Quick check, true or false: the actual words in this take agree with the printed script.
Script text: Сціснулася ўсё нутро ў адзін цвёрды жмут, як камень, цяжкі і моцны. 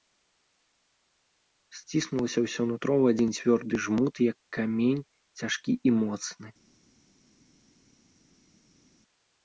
true